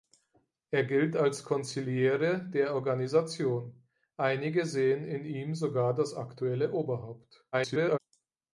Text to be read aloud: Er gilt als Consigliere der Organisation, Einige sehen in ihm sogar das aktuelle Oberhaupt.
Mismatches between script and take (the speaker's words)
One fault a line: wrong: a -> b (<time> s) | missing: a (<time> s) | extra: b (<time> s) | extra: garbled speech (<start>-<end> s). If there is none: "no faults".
extra: garbled speech (7.5-8.0 s)